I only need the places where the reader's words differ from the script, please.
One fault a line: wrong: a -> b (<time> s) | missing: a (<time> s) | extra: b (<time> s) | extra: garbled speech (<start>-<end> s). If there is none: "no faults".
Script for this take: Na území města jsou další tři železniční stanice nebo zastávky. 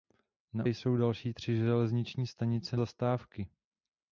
missing: území města (0.7 s)
missing: nebo (2.8 s)